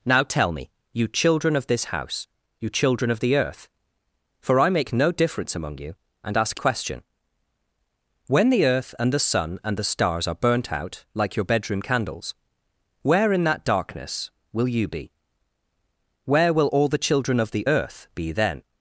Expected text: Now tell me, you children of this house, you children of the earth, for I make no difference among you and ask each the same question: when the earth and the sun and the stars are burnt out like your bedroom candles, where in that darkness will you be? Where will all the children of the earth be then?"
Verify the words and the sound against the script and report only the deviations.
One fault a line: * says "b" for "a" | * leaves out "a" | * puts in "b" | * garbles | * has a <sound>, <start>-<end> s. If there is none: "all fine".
* leaves out "each the same"